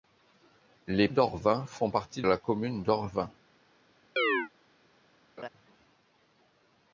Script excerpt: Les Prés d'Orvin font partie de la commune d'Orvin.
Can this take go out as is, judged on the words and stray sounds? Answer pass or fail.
fail